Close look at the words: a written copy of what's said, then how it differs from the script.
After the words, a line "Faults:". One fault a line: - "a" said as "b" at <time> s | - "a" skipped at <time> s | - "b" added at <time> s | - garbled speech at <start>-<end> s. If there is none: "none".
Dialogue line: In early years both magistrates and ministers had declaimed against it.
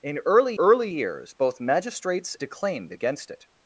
In early early years both magistrates declaimed against it.
Faults:
- "early" added at 0.6 s
- "and ministers had" skipped at 2.3 s